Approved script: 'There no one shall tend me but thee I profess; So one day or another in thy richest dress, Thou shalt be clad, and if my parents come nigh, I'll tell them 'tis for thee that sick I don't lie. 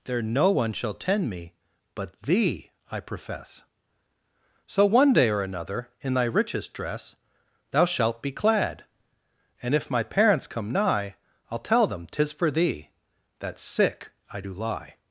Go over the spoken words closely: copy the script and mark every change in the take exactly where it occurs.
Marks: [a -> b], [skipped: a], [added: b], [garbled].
'There no one shall tend me but thee I profess; So one day or another in thy richest dress, Thou shalt be clad, and if my parents come nigh, I'll tell them 'tis for thee that sick I [don't -> do] lie.